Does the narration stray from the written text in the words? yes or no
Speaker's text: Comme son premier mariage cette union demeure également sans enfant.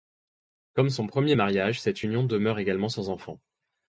no